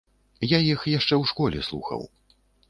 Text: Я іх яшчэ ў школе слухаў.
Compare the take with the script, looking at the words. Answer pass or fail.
pass